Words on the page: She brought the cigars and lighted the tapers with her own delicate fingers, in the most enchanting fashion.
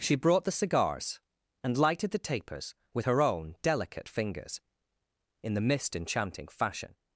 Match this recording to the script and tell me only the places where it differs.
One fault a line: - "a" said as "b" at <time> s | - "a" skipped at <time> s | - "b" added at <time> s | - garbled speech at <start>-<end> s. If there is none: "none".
- "most" said as "mist" at 5.6 s